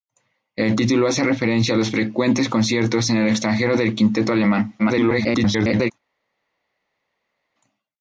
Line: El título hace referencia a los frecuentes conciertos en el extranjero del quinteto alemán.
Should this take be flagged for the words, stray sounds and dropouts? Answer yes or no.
yes